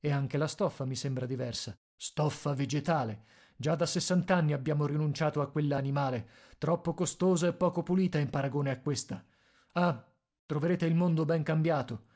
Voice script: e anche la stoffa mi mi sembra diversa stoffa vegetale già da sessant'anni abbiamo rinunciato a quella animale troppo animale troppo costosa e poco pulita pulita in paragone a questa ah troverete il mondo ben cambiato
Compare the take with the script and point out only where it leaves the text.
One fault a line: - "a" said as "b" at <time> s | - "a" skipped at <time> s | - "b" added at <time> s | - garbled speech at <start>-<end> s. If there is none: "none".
- "mi" skipped at 0.9 s
- "animale troppo" skipped at 6.9 s
- "pulita" skipped at 8.2 s